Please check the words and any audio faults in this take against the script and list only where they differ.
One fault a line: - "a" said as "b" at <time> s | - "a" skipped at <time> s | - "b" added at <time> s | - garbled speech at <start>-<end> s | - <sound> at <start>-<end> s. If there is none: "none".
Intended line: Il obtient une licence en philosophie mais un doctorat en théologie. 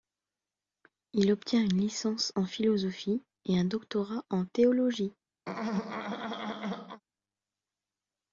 - "mais" said as "et" at 3.5 s
- throat clearing at 5.5-7.0 s